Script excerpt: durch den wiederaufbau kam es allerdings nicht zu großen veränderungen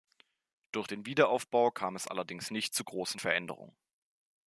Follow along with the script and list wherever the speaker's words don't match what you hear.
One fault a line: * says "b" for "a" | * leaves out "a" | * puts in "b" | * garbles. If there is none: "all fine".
all fine